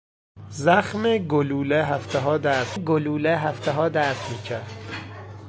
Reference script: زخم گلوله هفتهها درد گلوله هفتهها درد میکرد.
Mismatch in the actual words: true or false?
false